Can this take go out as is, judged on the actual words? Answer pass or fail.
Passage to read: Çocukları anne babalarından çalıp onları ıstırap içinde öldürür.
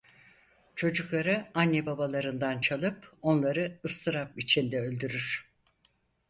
pass